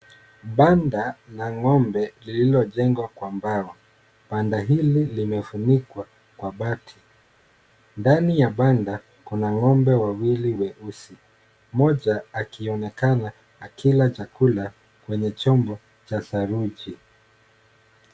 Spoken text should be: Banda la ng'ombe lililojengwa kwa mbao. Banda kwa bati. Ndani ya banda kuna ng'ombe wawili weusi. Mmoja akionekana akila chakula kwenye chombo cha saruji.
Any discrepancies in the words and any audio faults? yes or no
yes